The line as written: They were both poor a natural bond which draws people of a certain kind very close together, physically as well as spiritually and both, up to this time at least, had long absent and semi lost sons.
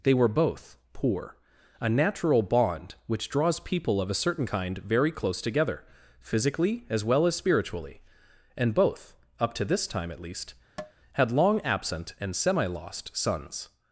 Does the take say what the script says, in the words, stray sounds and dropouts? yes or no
no